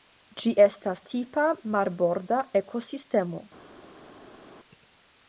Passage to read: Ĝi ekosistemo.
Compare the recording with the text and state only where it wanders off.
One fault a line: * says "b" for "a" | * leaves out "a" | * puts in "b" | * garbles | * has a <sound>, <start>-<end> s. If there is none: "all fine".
* puts in "estas tipa marborda"